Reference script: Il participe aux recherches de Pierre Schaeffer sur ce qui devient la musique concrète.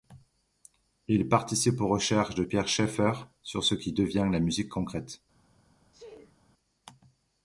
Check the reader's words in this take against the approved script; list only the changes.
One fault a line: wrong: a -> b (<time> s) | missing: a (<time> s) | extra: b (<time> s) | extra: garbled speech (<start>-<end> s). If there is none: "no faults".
no faults